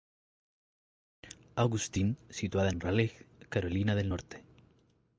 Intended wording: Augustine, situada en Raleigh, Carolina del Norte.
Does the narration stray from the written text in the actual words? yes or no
no